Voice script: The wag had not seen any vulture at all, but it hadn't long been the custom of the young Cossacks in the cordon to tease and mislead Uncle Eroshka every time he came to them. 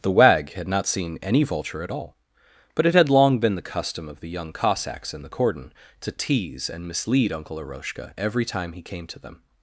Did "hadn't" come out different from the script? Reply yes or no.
yes